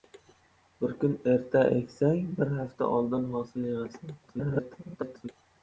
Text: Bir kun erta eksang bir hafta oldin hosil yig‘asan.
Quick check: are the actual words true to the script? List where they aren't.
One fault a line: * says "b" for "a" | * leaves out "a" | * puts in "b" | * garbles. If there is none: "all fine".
* garbles